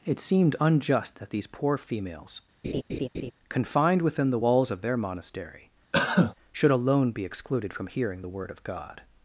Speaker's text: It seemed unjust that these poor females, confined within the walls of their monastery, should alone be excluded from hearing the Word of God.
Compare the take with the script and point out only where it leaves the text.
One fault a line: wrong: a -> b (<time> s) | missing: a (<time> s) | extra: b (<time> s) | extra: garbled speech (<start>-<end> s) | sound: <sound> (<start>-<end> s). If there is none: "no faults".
sound: laugh (2.6-3.3 s)
sound: cough (5.9-6.3 s)